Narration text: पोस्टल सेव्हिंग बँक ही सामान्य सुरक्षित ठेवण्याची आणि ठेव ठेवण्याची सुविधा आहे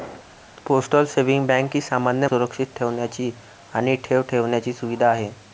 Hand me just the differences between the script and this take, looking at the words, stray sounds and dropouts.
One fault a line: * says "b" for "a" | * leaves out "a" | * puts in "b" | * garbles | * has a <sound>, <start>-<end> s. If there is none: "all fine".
all fine